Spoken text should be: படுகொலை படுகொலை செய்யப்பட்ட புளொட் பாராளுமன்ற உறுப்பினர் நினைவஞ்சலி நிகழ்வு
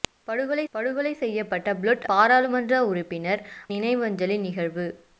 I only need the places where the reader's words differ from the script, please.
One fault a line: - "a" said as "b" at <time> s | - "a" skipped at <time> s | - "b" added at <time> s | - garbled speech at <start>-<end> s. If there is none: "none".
none